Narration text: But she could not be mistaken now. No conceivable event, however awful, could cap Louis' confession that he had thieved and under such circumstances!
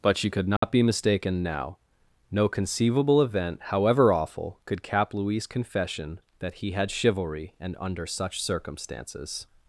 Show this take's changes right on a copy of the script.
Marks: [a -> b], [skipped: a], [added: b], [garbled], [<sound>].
But she could not [dropout] be mistaken now. No conceivable event, however awful, could cap Louis' confession that he had [thieved -> chivalry] and under such circumstances!